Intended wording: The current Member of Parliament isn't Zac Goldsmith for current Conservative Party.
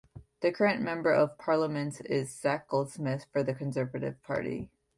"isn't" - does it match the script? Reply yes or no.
no